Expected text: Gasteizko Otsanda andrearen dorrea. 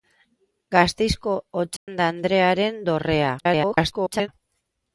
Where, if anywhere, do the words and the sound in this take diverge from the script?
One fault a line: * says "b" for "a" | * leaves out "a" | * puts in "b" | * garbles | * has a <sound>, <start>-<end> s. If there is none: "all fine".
* has a dropout, 1.8-1.9 s
* garbles